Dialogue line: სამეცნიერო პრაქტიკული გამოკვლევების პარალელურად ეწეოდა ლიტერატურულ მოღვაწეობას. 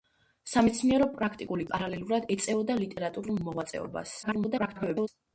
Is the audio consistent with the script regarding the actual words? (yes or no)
no